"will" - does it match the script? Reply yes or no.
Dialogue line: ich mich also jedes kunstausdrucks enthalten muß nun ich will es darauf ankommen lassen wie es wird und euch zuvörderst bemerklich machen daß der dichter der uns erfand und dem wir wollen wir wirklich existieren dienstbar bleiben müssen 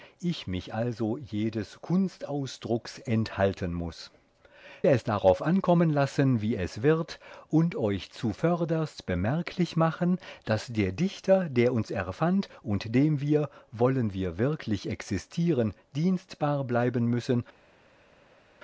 no